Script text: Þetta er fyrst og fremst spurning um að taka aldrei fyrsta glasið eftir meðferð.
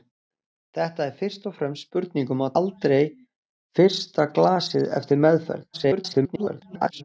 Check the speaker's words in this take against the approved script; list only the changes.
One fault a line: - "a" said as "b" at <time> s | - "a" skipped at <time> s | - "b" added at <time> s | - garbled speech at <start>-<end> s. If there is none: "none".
- "taka" skipped at 2.5 s
- garbled speech at 5.7-7.0 s